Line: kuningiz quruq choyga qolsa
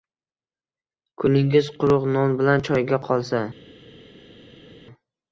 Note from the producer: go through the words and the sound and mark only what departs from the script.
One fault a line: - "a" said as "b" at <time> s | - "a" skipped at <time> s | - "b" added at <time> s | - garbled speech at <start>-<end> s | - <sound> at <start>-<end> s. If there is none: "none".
- "non bilan" added at 2.1 s